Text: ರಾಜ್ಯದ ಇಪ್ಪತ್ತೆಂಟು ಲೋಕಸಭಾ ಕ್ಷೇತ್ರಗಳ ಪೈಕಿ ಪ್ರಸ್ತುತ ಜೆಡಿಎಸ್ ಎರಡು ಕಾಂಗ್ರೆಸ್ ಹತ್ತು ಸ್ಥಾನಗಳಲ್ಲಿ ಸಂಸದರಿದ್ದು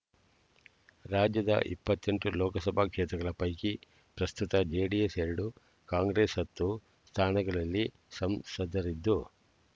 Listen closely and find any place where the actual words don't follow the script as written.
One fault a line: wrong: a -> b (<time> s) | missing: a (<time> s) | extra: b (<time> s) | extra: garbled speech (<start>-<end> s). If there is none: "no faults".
no faults